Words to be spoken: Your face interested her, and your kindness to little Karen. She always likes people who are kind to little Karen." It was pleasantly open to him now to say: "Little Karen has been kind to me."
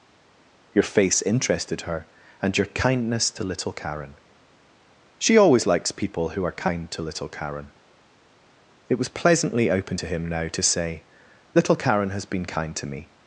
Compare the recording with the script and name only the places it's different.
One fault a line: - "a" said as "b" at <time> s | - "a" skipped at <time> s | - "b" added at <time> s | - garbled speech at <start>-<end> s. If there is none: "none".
none